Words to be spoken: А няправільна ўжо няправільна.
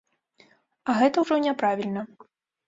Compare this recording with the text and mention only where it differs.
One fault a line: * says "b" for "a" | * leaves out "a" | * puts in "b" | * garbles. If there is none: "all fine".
* says "гэта" for "няправільна"